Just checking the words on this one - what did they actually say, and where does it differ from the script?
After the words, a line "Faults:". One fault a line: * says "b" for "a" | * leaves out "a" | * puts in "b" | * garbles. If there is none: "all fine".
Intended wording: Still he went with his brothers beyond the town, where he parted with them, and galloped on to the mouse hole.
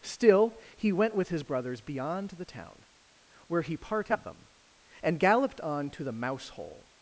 Still he went with his brothers beyond the town, where he parted them, and galloped on to the mouse hole.
Faults:
* leaves out "with"